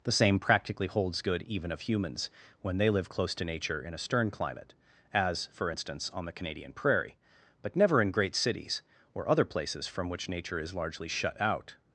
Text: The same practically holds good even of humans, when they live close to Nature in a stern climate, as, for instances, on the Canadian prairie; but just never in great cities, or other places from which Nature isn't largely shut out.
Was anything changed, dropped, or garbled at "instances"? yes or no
yes